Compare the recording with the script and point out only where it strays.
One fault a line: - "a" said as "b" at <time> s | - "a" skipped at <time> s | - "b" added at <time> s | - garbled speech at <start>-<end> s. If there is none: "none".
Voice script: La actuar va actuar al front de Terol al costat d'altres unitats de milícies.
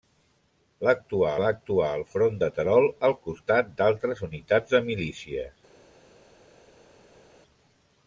none